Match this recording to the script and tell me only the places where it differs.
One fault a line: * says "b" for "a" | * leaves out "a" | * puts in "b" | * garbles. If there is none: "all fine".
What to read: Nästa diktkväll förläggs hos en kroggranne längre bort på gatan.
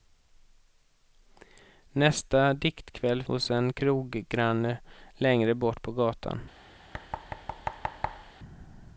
* leaves out "förläggs"